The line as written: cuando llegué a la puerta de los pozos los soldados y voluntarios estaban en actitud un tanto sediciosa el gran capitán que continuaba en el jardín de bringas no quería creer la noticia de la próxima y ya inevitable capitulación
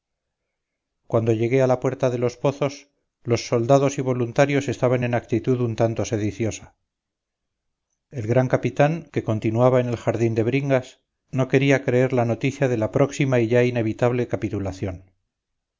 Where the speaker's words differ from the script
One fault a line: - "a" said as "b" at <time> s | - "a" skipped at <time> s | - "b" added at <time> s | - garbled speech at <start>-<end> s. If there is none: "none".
none